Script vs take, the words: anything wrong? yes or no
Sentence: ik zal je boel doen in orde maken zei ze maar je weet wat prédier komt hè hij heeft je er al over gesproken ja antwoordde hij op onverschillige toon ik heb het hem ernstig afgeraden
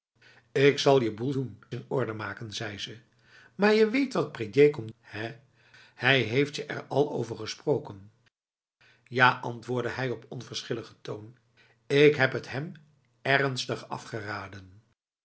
no